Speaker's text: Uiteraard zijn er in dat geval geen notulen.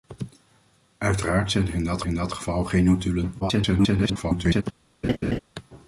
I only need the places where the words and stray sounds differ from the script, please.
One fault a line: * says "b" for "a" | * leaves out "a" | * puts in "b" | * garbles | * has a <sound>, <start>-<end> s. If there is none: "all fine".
* puts in "in dat"
* garbles
* has a laugh, 5.0-5.4 s